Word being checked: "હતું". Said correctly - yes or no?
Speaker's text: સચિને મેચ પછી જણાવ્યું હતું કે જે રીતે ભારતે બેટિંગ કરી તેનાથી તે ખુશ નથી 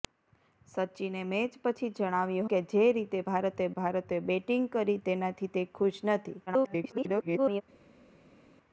no